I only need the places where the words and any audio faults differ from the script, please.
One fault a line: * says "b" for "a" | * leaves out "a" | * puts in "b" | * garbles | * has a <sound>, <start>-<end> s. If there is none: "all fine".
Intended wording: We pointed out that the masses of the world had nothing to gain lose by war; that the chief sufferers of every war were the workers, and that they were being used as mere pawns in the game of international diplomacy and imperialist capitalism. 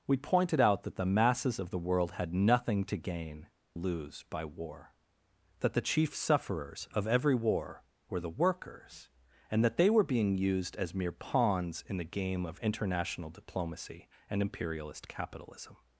all fine